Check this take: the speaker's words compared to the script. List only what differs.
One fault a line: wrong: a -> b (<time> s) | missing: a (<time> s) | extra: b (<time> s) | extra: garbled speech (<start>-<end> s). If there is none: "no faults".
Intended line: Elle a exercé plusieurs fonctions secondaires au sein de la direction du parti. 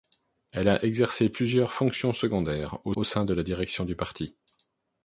extra: au (3.0 s)